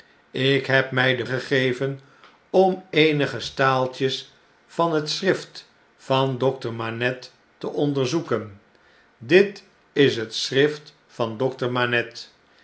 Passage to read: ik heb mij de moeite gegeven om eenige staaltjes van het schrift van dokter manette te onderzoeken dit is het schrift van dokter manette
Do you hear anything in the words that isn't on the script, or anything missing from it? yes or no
yes